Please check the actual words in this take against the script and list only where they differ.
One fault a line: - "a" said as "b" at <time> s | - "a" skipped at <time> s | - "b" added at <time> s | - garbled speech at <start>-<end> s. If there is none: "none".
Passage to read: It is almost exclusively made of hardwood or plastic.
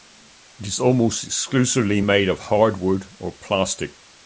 none